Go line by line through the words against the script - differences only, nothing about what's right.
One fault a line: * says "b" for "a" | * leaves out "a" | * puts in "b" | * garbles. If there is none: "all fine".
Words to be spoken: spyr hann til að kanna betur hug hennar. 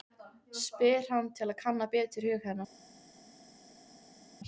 all fine